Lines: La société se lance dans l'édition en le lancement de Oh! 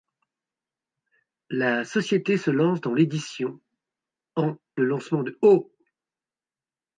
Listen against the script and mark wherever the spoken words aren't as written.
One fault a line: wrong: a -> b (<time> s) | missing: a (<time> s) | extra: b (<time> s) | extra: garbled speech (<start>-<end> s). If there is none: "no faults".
no faults